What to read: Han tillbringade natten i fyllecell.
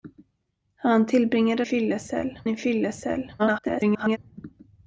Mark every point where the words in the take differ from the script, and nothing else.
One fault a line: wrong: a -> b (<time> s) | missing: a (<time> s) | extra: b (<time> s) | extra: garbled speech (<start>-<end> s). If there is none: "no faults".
wrong: natten -> fyllecell (1.6 s)
extra: garbled speech (3.4-4.2 s)